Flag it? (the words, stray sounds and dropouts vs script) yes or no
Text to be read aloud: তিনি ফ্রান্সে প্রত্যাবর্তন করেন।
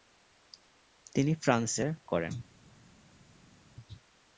yes